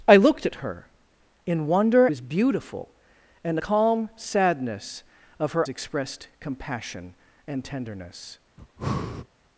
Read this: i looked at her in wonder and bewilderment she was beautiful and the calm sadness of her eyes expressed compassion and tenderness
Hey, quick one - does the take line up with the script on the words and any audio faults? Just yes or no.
no